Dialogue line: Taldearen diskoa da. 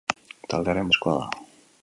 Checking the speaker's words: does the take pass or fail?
pass